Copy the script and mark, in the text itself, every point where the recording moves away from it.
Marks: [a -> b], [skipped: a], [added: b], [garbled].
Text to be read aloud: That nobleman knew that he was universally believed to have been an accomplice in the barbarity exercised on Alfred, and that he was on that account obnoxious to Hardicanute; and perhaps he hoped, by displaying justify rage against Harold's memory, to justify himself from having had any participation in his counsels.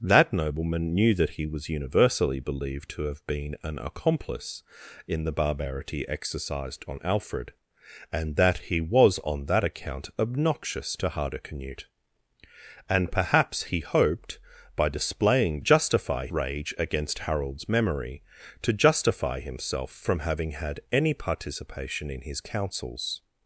That nobleman knew that he was universally believed to have been an accomplice in the barbarity exercised on Alfred, and that he was on that account obnoxious to Hardicanute; and perhaps he hoped, by displaying justify rage against Harold's memory, to justify himself from having had any participation in his counsels.